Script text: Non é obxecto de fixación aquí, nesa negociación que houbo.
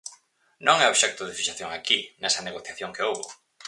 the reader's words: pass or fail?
pass